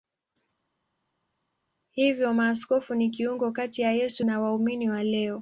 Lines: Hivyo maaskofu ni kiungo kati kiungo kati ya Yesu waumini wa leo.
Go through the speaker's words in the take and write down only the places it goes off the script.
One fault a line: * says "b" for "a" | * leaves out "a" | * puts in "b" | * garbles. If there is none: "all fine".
* leaves out "kiungo kati"
* puts in "na"